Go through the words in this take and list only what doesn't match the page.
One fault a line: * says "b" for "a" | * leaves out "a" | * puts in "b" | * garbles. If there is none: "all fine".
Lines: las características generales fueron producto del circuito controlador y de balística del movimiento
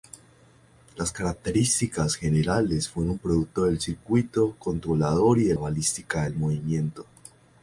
all fine